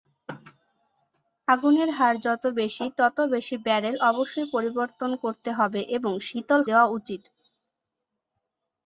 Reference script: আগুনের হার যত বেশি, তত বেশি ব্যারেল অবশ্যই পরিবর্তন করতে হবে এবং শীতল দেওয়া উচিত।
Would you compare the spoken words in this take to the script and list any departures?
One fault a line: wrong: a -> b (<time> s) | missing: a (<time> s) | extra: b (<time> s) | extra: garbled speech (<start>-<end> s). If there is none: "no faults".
no faults